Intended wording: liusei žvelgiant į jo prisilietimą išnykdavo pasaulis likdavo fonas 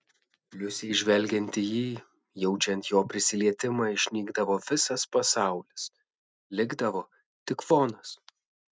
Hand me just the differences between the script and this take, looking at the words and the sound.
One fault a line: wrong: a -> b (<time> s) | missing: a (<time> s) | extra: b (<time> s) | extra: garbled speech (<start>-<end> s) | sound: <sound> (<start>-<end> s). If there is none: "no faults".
extra: jį jaučiant (1.6 s)
extra: visas (4.7 s)
extra: tik (7.5 s)